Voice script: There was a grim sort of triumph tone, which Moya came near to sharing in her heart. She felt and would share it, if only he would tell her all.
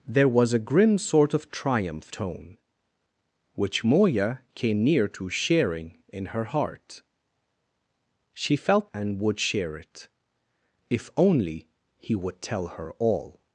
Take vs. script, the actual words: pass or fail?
pass